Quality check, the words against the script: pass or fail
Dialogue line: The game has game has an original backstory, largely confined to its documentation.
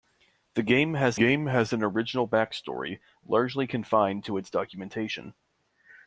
pass